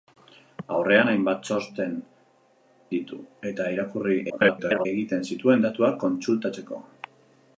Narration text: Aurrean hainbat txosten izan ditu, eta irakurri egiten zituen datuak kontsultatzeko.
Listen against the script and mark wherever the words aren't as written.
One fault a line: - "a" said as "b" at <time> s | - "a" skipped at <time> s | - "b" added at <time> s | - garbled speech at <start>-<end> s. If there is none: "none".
- "izan" skipped at 1.9 s
- garbled speech at 4.3-4.9 s